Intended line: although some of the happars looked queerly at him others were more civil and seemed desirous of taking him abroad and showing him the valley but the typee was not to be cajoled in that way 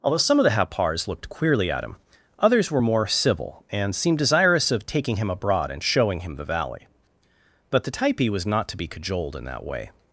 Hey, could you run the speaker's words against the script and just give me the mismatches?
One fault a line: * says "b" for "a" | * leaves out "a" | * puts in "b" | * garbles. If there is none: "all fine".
all fine